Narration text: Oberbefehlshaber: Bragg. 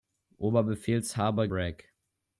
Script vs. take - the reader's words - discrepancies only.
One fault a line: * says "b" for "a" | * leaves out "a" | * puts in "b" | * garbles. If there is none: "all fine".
all fine